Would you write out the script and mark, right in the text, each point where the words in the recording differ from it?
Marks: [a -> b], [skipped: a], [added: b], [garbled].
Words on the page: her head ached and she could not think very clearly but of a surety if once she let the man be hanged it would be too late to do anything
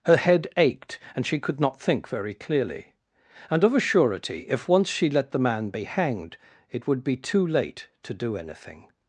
her head ached and she could not think very clearly [but -> and] of a surety if once she let the man be hanged it would be too late to do anything